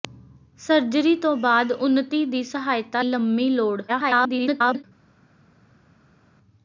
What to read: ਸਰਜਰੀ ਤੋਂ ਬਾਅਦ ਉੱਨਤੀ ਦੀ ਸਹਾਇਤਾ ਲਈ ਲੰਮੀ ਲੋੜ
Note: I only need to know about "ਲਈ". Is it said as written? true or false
false